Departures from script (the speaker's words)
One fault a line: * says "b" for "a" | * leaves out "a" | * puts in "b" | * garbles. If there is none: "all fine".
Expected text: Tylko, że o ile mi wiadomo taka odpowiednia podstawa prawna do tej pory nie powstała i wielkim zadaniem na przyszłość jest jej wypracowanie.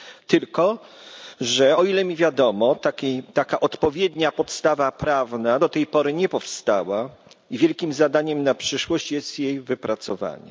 all fine